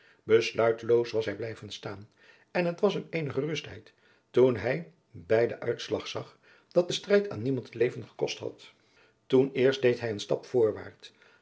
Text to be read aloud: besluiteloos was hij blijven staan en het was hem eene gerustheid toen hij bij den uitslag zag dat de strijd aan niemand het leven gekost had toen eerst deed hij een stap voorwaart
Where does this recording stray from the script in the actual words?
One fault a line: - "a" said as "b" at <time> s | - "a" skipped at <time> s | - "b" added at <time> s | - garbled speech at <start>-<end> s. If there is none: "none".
none